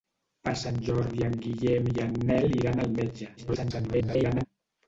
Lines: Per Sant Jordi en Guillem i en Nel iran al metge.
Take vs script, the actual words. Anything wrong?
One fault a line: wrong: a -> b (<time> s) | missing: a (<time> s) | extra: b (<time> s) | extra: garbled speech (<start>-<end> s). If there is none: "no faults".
extra: garbled speech (3.4-4.5 s)